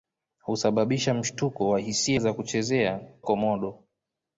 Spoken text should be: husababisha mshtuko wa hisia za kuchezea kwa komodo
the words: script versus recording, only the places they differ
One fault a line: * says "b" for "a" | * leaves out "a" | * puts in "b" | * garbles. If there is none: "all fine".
* leaves out "kwa"